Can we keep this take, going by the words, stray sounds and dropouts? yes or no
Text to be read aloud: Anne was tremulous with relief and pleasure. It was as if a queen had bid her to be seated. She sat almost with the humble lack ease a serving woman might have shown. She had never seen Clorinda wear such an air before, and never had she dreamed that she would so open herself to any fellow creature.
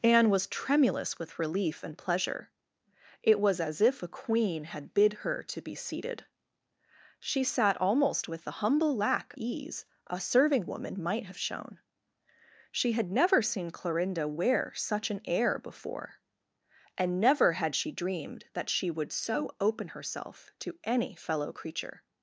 yes